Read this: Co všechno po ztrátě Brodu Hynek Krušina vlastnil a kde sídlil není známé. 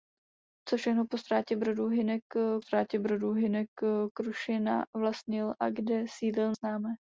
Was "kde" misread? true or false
false